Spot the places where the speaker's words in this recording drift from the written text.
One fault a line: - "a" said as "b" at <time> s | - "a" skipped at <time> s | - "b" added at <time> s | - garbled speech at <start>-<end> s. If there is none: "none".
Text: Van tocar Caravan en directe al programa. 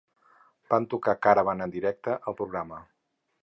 none